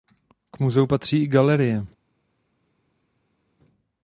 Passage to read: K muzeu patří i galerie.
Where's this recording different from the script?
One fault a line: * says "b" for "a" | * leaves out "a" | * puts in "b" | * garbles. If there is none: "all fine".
all fine